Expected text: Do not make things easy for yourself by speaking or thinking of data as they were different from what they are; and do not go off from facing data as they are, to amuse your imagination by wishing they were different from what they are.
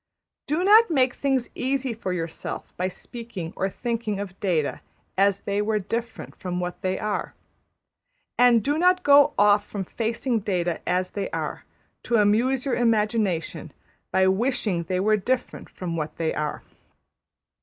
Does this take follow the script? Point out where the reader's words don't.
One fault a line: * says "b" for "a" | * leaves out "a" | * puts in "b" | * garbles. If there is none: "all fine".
all fine